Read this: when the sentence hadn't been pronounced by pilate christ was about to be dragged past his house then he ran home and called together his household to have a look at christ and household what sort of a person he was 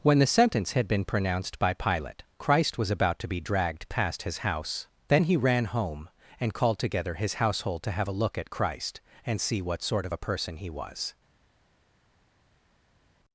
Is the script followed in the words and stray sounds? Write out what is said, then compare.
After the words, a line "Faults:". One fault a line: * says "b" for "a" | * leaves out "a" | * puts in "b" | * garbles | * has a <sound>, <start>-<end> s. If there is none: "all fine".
when the sentence had been pronounced by pilate christ was about to be dragged past his house then he ran home and called together his household to have a look at christ and see what sort of a person he was
Faults:
* says "had" for "hadn't"
* says "see" for "household"